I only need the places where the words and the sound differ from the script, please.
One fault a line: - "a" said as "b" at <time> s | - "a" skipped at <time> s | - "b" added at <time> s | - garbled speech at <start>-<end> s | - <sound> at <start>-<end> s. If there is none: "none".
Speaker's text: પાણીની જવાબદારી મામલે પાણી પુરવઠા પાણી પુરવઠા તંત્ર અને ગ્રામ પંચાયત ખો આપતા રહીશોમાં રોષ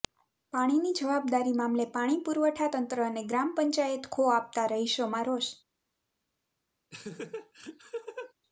- "પાણી પુરવઠા" skipped at 2.7 s
- laugh at 6.9-8.3 s